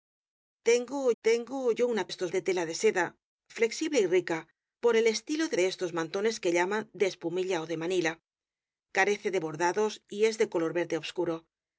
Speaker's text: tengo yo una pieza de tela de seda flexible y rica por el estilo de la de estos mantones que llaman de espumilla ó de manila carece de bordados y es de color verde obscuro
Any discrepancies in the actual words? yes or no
yes